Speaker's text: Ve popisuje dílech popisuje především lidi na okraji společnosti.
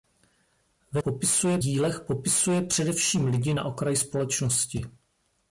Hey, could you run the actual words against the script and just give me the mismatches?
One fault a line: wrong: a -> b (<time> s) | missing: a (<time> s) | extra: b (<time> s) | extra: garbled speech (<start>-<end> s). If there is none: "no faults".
no faults